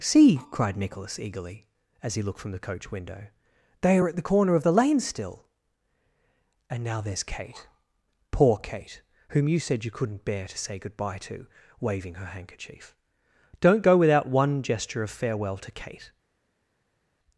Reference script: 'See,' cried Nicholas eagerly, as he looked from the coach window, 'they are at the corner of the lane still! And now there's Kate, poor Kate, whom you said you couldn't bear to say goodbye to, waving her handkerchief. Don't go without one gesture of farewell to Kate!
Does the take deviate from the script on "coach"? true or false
false